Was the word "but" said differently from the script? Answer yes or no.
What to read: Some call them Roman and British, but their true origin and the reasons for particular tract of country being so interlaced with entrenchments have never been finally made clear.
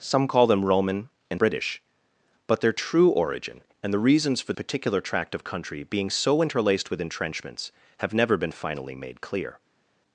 no